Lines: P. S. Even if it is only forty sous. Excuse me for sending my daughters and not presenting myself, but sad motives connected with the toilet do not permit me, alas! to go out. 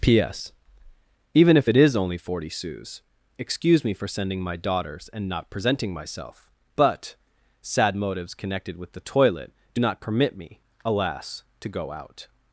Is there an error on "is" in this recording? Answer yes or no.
no